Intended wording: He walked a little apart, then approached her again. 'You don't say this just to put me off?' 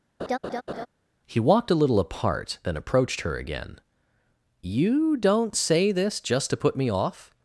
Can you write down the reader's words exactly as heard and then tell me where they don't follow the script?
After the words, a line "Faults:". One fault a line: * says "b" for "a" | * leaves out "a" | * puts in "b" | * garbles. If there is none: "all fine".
He walked a little apart, then approached her again. 'You don't say this just to put me off?'
Faults:
all fine